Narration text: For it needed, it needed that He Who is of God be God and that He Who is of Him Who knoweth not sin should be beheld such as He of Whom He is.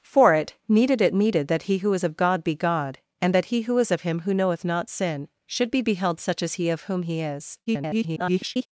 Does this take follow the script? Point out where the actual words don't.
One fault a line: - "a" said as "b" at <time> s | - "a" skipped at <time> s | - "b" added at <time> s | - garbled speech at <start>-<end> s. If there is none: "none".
- garbled speech at 7.7-8.7 s